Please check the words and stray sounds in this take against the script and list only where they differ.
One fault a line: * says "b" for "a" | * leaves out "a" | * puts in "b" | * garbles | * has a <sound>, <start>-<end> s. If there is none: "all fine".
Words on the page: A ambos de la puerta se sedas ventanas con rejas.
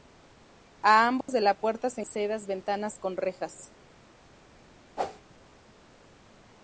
* has a dropout, 1.2-1.3 s
* has a whoosh, 5.0-5.2 s